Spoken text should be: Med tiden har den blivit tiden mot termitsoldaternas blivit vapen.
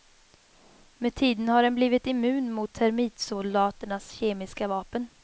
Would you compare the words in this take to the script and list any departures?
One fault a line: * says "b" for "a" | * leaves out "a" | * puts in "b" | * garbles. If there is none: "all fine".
* says "immun" for "tiden"
* says "kemiska" for "blivit"